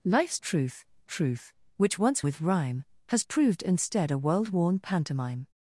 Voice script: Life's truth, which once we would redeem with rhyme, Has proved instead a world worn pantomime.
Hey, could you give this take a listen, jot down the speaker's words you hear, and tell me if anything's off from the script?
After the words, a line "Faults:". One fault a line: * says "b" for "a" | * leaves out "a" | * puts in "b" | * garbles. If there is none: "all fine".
Life's truth truth, which once with rhyme, Has proved instead a world worn pantomime.
Faults:
* puts in "truth"
* leaves out "we would redeem"